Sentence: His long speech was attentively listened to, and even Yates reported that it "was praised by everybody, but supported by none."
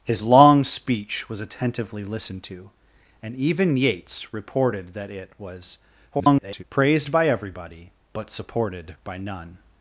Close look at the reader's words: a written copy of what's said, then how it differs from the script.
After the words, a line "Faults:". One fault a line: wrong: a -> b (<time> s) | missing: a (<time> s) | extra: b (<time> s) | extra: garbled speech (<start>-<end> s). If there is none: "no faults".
His long speech was attentively listened to, and even Yates reported that it "was [garbled] praised by everybody, but supported by none."
Faults:
extra: garbled speech (6.1-6.6 s)